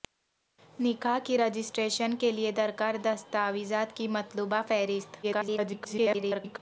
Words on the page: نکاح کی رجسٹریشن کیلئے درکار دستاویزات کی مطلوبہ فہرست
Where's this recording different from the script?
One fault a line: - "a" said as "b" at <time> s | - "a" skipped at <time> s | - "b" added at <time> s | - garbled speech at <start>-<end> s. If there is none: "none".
- garbled speech at 5.2-6.6 s